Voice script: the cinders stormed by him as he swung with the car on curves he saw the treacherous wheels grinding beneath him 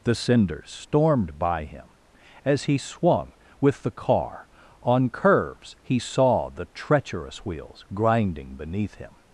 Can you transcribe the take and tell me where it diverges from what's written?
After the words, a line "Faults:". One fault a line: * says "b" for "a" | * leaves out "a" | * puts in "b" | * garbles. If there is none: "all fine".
the cinders stormed by him as he swung with the car on curves he saw the treacherous wheels grinding beneath him
Faults:
all fine